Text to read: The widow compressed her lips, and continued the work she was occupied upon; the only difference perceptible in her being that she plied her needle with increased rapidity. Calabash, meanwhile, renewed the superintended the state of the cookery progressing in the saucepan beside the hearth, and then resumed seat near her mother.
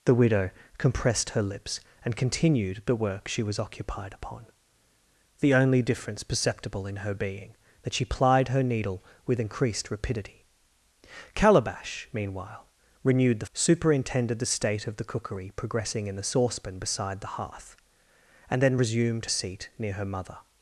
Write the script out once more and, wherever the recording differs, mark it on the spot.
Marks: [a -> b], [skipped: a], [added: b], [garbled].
The widow compressed her lips, and continued the work she was occupied upon; the only difference perceptible in her being that she plied her needle with increased rapidity. Calabash, meanwhile, renewed the superintended the state of the cookery progressing in the saucepan beside the hearth, and then resumed seat near her mother.